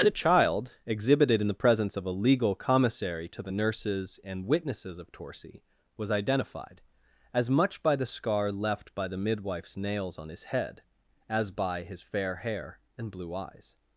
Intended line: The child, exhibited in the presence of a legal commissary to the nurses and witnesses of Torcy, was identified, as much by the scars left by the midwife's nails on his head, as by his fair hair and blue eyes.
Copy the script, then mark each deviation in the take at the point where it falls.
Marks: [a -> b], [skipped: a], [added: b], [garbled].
The child, exhibited in the presence of a legal commissary to the nurses and witnesses of Torcy, was identified, as much by the [scars -> scar] left by the midwife's nails on his head, as by his fair hair and blue eyes.